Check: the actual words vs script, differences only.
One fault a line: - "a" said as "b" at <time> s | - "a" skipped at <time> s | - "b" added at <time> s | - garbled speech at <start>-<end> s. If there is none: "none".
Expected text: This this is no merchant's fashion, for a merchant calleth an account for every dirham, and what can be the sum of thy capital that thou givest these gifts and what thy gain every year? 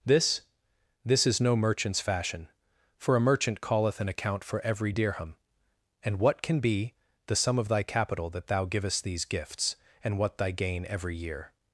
none